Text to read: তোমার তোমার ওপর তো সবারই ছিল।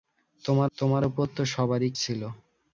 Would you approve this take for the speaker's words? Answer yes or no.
yes